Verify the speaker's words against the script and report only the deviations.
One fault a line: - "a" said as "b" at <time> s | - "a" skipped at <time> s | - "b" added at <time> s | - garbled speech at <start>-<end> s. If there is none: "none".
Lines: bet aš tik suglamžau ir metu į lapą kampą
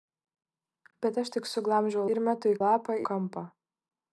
none